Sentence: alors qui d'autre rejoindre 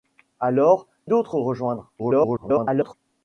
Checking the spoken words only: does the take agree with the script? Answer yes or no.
no